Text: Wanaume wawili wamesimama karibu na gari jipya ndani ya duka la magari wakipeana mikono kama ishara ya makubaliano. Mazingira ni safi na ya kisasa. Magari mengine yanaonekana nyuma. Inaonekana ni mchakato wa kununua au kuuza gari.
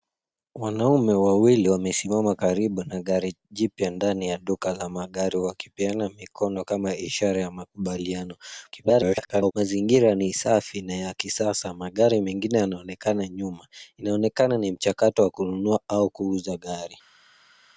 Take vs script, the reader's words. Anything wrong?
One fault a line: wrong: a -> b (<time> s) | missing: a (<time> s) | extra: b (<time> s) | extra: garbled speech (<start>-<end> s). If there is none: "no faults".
extra: garbled speech (8.7-9.5 s)